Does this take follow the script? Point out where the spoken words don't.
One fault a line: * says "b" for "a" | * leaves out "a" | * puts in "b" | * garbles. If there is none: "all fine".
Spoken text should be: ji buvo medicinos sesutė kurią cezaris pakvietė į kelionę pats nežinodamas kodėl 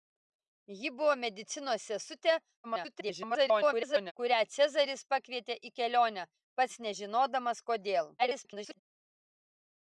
* garbles
* garbles